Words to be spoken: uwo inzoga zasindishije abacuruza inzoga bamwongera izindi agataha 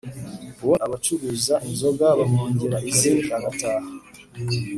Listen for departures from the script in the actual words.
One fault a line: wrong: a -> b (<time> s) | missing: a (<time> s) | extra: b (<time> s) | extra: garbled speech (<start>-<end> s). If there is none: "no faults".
missing: inzoga zasindishije (0.8 s)